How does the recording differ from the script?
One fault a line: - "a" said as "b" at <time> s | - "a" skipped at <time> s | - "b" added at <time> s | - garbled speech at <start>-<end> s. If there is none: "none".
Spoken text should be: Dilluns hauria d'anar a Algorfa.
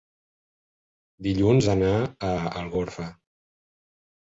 - "hauria" skipped at 1.7 s